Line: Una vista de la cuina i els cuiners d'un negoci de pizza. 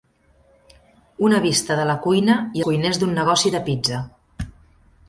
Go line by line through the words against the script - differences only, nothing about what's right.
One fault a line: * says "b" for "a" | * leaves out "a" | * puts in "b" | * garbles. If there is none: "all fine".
* leaves out "els"